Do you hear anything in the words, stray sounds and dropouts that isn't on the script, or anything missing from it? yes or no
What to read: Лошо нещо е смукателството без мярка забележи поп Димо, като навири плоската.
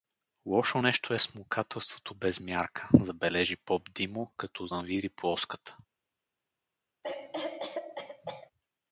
yes